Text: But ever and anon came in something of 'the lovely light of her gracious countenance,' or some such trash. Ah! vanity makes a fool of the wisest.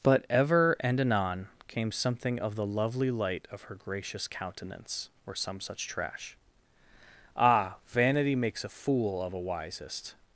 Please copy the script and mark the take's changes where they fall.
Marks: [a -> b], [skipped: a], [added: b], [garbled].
But ever and anon came [skipped: in] something of 'the lovely light of her gracious countenance,' or some such trash. Ah! vanity makes a fool of [the -> a] wisest.